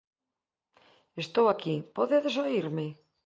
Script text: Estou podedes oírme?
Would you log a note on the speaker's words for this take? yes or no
yes